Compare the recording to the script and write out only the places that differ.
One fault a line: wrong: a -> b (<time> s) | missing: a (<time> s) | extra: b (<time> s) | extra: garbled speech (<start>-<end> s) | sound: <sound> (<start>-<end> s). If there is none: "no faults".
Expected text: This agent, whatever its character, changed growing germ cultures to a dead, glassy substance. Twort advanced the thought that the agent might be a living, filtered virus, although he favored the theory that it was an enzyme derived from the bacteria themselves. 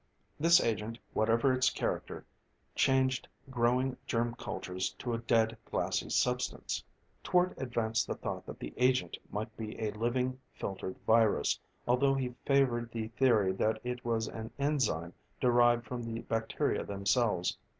no faults